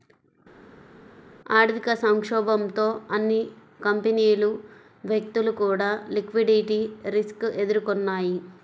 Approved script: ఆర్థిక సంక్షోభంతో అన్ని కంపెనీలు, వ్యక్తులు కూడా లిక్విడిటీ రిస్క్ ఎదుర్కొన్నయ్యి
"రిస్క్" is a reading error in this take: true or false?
false